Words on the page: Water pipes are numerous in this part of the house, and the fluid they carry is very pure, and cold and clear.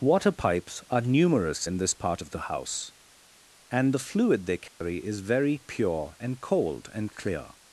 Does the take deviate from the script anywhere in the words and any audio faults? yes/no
yes